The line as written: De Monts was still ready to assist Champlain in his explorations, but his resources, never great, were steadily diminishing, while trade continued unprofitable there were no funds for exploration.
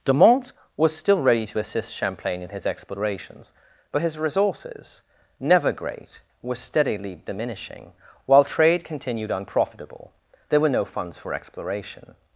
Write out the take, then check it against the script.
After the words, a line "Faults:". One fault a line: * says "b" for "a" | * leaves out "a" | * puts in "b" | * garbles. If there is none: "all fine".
De Monts was still ready to assist Champlain in his explorations, but his resources, never great, were steadily diminishing, while trade continued unprofitable there were no funds for exploration.
Faults:
all fine